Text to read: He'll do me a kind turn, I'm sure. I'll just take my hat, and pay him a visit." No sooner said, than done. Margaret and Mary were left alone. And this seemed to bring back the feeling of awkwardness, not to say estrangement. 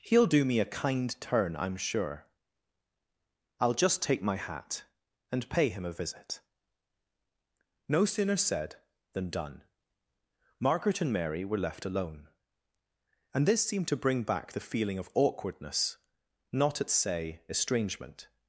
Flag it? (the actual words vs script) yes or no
yes